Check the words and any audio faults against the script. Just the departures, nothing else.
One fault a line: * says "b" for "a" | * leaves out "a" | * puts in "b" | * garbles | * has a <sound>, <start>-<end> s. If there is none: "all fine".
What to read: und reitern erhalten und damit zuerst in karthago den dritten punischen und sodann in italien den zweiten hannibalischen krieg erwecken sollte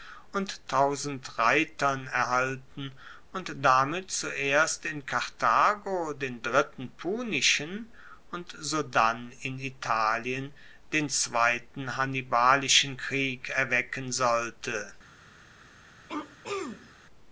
* has a throat clearing, 16.1-16.9 s